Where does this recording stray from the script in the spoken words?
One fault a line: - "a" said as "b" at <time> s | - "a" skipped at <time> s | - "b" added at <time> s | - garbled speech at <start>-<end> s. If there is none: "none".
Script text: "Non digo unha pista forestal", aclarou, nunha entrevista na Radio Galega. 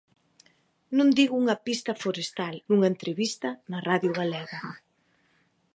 - "aclarou" skipped at 2.5 s